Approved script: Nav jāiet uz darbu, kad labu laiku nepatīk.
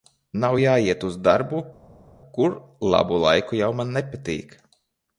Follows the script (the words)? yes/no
no